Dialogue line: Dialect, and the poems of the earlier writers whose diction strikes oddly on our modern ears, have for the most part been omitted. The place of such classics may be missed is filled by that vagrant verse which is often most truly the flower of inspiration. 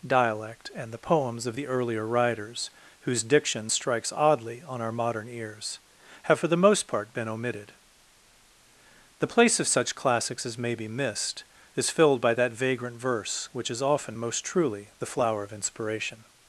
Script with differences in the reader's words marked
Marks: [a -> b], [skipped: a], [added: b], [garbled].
Dialect, and the poems of the earlier writers whose diction strikes oddly on our modern ears, have for the most part been omitted. The place of such classics [added: as] may be missed is filled by that vagrant verse which is often most truly the flower of inspiration.